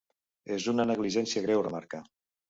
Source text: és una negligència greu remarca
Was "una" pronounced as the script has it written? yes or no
yes